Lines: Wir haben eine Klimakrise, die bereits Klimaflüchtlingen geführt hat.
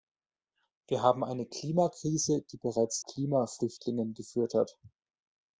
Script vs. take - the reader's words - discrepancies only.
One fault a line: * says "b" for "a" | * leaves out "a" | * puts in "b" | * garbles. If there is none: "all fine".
all fine